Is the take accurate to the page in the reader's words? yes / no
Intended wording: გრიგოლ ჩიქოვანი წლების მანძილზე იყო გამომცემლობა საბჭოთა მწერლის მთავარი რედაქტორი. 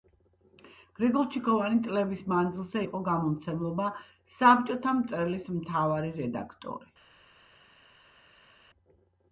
yes